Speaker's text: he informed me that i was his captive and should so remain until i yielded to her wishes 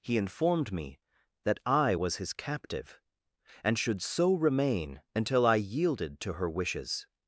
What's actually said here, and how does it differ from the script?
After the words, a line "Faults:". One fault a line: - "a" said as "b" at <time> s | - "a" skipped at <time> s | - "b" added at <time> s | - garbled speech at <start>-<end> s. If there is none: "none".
he informed me that i was his captive and should so remain until i yielded to her wishes
Faults:
none